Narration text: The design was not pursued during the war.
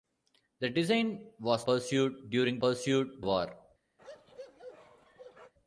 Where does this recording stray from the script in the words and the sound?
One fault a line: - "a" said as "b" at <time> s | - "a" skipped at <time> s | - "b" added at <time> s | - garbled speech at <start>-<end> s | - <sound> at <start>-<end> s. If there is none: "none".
- "not" skipped at 1.7 s
- "the" said as "pursued" at 2.6 s
- bark at 4.0-5.5 s